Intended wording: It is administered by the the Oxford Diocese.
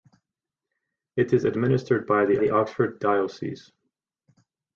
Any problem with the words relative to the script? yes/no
no